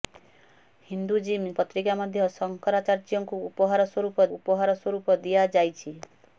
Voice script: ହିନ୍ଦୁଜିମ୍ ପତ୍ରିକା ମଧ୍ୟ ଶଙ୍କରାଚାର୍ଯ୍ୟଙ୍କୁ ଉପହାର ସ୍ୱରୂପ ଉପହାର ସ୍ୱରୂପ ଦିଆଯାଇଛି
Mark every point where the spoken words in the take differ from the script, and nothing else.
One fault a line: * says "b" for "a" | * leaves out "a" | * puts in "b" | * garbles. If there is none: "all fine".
all fine